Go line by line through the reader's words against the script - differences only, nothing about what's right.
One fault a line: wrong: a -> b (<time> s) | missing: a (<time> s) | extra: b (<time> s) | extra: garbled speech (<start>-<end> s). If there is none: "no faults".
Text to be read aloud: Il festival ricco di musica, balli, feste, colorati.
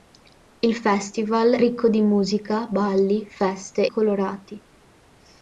no faults